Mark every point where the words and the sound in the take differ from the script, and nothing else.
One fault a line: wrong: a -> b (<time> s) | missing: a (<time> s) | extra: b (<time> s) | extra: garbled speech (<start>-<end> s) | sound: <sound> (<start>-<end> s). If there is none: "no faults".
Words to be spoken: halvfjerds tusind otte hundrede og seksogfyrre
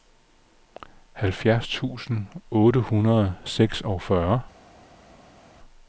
no faults